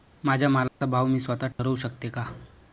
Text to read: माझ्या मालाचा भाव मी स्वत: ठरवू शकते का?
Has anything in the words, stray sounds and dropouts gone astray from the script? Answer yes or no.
yes